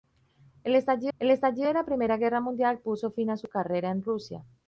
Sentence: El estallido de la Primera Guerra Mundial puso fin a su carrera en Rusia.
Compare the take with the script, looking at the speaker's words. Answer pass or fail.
fail